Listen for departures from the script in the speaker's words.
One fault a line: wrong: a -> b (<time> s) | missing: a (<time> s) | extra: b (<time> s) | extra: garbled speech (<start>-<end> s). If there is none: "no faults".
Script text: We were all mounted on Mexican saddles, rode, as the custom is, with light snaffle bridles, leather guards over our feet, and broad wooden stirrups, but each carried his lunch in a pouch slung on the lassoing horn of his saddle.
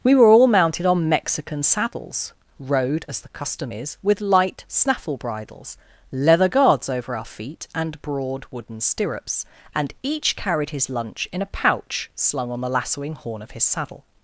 wrong: but -> and (9.7 s)